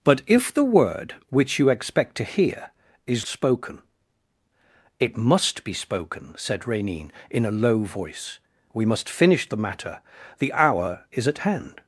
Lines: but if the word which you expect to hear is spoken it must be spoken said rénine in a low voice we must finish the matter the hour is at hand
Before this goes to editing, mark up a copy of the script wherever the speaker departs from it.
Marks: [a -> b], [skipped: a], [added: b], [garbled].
but if the word which you expect to hear is spoken it must be spoken said rénine in a low voice we must finish the matter the hour is at hand